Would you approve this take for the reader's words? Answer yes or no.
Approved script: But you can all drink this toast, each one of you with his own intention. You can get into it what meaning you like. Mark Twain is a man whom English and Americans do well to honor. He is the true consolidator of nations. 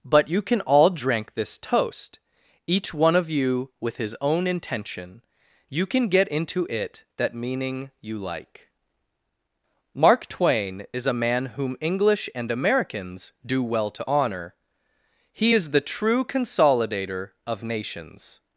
no